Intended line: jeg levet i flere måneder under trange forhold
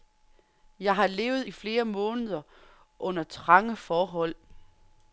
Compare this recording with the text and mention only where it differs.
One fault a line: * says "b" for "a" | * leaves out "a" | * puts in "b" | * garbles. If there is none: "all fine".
* puts in "har"